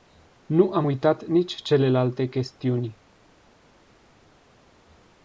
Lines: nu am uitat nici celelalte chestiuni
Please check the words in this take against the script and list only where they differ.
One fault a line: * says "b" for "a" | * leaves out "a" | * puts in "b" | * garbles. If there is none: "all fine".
all fine